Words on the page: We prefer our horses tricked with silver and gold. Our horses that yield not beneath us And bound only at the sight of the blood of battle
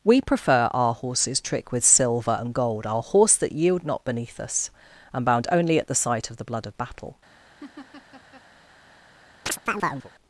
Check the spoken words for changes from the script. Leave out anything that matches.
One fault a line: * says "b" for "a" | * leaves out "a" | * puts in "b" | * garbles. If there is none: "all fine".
* says "trick" for "tricked"
* says "horse" for "horses"